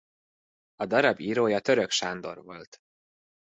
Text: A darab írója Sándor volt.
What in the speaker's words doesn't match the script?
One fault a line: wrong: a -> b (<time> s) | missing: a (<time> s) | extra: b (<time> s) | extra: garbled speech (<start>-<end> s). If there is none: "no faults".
extra: Török (1.6 s)